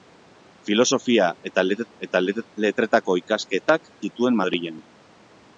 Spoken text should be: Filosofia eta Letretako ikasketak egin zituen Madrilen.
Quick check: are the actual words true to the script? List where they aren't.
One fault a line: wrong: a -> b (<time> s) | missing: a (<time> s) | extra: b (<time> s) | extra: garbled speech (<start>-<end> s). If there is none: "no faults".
extra: eta (2.1 s)
missing: egin (3.9 s)